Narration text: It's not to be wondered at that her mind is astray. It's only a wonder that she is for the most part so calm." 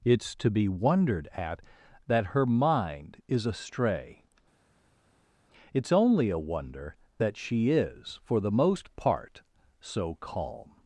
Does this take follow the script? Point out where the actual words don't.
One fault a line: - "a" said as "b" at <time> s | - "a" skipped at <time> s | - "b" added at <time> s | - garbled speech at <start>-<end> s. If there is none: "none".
- "not" skipped at 0.3 s